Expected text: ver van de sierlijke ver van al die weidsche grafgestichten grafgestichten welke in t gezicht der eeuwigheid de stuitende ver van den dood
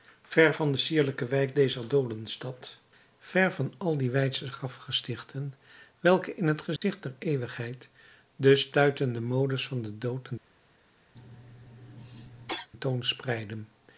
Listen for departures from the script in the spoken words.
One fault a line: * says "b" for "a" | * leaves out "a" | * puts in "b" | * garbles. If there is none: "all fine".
* puts in "wijk dezer doodenstad"
* leaves out "grafgestichten"
* says "modes" for "ver"